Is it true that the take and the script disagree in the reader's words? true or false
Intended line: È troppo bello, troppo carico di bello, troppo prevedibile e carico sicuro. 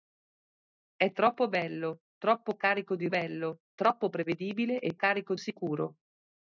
false